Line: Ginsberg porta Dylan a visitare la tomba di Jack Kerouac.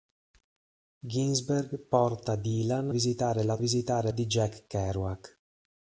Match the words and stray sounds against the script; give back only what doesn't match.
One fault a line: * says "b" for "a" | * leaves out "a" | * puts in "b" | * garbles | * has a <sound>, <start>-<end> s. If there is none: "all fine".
* leaves out "a"
* says "visitare" for "tomba"